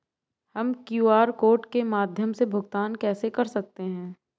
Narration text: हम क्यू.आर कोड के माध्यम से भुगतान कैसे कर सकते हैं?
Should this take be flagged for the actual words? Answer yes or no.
no